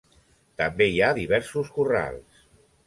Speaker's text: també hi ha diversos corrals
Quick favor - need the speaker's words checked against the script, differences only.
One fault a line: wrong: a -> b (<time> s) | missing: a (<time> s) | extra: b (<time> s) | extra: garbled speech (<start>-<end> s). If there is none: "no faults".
no faults